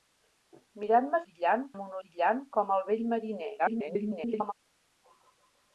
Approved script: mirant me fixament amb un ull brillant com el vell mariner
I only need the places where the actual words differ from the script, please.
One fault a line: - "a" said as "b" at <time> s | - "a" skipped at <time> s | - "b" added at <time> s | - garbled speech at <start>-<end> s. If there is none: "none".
- "fixament" said as "brillant" at 1.2 s
- "ull" skipped at 2.0 s
- garbled speech at 3.6-4.5 s